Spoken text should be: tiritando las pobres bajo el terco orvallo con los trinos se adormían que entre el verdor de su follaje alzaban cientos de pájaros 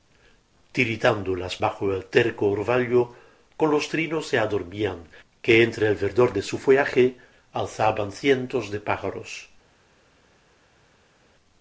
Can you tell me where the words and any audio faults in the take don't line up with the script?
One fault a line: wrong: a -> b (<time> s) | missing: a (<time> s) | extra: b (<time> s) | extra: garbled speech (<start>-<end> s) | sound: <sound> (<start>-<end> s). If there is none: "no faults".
missing: pobres (1.6 s)